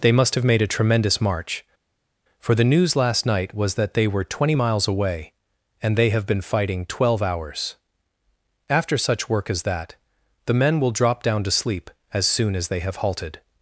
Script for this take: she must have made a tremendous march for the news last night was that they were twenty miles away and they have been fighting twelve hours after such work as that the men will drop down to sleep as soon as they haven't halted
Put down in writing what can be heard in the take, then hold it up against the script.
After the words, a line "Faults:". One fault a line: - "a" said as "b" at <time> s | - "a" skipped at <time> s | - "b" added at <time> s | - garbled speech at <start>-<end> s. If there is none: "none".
they must have made a tremendous march for the news last night was that they were twenty miles away and they have been fighting twelve hours after such work as that the men will drop down to sleep as soon as they have halted
Faults:
- "she" said as "they" at 0.0 s
- "haven't" said as "have" at 12.8 s